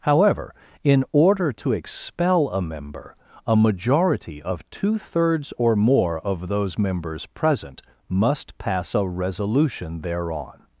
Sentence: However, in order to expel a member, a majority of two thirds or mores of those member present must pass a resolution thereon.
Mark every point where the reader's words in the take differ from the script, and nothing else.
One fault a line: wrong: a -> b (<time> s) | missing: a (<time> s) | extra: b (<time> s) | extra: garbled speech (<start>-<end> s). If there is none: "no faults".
wrong: mores -> more (5.8 s)
wrong: member -> members (6.8 s)